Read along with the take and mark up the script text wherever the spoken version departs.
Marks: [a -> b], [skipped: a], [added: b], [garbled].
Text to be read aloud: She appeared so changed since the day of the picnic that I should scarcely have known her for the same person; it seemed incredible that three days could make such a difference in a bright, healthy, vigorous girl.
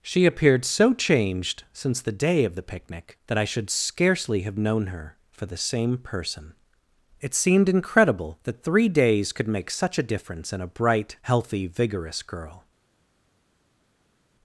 She appeared so changed since the day of the picnic that I should scarcely have known her for the same person; it seemed incredible that three days could make such a difference in a bright, healthy, vigorous girl.